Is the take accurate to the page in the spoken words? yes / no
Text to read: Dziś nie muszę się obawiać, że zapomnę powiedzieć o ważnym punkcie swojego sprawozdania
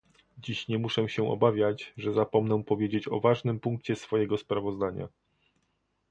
yes